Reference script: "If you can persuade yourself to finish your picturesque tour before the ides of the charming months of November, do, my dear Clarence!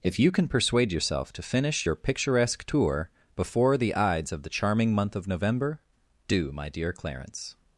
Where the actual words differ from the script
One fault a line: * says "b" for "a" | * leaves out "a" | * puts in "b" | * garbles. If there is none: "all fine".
* says "month" for "months"